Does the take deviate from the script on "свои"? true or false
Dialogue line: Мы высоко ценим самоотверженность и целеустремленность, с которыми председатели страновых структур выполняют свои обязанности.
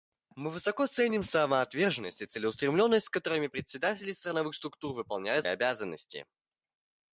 true